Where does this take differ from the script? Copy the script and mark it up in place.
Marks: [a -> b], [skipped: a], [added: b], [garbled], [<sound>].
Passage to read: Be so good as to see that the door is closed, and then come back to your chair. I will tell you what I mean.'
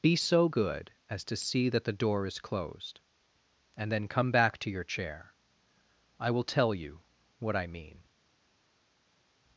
Be so good as to see that the door is closed, and then come back to your chair. I will tell you what I mean.'